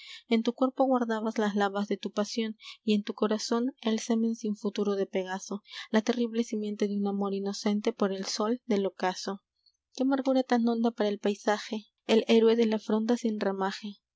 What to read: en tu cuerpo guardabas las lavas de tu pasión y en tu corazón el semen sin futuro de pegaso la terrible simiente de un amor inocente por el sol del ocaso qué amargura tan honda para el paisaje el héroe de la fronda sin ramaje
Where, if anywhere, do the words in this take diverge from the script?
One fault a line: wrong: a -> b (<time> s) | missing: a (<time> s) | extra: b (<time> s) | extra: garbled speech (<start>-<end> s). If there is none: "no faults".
no faults